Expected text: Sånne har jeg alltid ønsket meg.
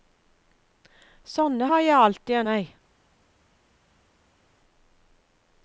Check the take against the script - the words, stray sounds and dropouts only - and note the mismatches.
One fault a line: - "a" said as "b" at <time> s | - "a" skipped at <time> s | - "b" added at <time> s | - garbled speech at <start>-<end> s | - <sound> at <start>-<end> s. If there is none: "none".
- "ønsket" skipped at 2.4 s